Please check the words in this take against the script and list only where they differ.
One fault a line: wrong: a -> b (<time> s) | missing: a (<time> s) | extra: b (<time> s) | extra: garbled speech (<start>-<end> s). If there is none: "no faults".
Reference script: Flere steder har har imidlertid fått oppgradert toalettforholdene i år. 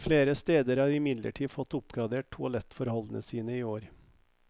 missing: har (0.9 s)
extra: sine (3.2 s)